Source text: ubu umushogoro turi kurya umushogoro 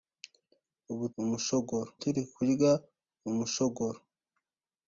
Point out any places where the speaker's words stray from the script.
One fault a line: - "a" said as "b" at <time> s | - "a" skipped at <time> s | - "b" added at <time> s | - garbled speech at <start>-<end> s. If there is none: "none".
none